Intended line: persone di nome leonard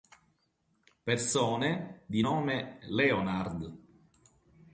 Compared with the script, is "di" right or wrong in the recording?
right